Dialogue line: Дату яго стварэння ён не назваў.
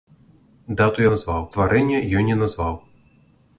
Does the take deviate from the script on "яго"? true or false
true